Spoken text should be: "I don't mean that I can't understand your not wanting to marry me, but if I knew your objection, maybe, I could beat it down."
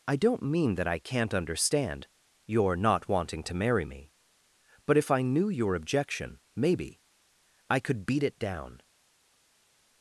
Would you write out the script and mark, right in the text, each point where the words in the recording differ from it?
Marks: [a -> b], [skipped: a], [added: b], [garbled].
"I don't mean that I can't understand your not wanting to marry me, but if I knew your objection, maybe, I could beat it down."